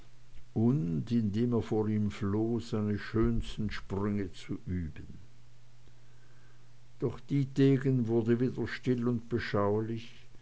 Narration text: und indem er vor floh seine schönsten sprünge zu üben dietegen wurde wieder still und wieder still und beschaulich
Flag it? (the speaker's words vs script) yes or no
yes